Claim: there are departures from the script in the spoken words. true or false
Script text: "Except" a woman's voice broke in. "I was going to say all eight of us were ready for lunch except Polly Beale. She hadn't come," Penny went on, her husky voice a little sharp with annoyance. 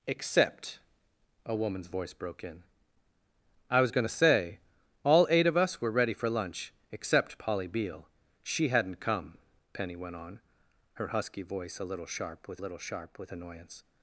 true